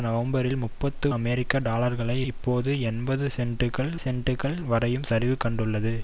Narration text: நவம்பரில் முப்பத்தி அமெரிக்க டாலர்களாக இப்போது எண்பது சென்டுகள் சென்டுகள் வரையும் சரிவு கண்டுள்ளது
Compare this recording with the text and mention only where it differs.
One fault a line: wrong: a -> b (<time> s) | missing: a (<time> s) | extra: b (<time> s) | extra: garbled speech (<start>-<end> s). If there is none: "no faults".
no faults